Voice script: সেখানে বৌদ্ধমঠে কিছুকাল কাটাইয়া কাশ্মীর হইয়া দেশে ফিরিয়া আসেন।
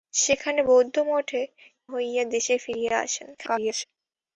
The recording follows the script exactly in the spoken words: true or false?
false